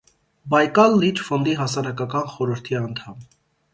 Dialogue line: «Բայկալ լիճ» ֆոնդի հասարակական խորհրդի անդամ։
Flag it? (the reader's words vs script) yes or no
no